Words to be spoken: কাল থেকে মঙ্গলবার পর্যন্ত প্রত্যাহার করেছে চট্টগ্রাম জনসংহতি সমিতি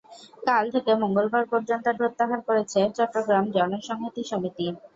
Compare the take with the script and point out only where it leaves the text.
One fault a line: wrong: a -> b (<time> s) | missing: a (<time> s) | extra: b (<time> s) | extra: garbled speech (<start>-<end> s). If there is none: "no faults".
no faults